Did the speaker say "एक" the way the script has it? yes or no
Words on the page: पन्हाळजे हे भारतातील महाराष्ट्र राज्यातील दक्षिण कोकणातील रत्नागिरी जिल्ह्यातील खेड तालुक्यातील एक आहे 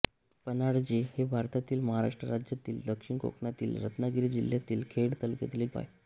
yes